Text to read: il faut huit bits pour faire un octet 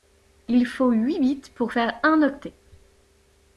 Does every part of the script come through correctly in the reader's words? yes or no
yes